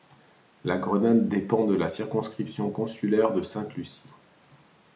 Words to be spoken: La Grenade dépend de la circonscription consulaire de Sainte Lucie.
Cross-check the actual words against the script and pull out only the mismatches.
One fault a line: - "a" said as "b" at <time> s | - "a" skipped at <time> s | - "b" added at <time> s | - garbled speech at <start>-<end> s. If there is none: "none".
none